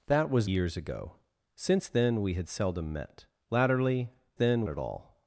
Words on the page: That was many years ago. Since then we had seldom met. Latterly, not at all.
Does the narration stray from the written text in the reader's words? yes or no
yes